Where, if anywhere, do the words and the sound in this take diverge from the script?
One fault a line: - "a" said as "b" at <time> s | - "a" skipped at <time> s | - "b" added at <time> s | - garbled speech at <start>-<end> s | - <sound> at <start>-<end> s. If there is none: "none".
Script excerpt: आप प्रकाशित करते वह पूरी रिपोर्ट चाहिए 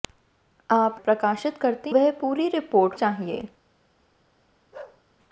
- bark at 4.7-5.0 s